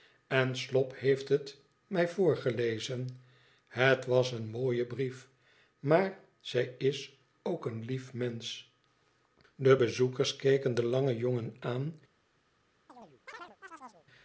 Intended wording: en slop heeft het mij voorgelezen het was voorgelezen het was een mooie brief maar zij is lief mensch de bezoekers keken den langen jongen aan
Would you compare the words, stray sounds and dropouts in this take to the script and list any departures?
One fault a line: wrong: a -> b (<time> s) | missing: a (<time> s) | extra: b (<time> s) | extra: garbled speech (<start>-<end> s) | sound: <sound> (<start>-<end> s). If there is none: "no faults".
missing: voorgelezen het was (4.3 s)
extra: ook een (7.4 s)
sound: chirp (12.9-14.1 s)